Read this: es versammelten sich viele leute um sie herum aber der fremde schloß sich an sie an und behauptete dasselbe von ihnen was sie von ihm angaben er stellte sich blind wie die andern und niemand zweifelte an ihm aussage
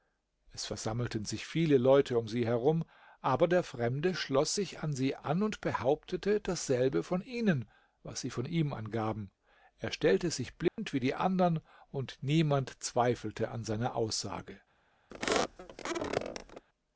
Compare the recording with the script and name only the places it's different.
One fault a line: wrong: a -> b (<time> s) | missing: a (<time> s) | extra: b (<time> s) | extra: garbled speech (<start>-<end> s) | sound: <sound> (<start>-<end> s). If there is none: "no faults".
sound: dropout (10.7-10.8 s)
wrong: ihm -> seiner (13.6 s)
sound: squeak (15.1-16.7 s)